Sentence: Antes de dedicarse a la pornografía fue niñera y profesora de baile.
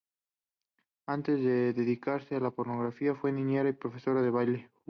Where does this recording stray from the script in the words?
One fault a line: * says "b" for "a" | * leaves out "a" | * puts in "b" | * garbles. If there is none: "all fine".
all fine